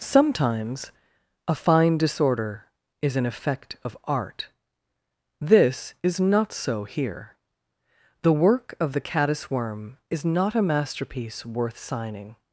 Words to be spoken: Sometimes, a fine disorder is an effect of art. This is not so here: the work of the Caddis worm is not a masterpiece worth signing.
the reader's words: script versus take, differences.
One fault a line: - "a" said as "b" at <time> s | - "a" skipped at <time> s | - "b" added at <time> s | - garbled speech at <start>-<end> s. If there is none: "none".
none